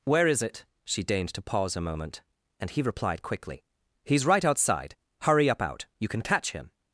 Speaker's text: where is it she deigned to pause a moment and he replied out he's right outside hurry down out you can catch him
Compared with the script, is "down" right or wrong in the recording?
wrong